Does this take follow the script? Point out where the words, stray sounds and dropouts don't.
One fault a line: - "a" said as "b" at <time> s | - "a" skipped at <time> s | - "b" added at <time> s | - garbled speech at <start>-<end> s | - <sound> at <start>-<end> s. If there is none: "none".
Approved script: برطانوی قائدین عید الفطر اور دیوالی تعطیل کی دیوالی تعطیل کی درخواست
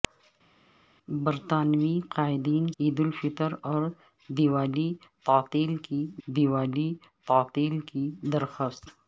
none